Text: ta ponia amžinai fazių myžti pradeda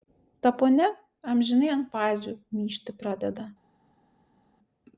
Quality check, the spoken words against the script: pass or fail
fail